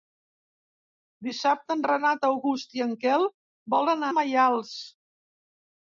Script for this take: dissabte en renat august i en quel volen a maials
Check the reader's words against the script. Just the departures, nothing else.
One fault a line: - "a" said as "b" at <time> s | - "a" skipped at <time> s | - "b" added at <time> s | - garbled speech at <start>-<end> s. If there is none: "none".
none